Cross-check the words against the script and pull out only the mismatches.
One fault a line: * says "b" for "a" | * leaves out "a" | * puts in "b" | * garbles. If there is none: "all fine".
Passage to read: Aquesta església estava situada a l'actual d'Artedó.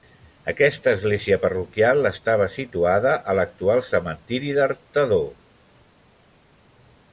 * puts in "parroquial"
* puts in "cementiri"